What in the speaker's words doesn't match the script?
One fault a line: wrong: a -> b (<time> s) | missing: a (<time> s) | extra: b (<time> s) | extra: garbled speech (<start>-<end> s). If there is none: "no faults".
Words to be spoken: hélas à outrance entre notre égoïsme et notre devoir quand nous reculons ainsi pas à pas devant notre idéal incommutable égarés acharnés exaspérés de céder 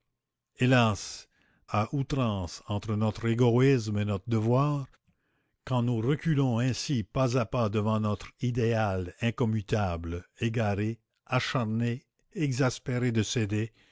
no faults